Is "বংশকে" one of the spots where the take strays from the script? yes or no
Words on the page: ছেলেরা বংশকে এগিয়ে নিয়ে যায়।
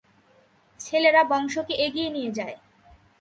no